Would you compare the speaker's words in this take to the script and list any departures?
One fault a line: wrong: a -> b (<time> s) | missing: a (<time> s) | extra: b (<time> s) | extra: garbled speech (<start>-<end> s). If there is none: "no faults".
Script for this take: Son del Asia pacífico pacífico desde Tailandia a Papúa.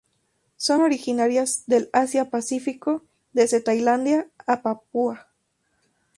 extra: originarias (0.8 s)
missing: pacífico (3.0 s)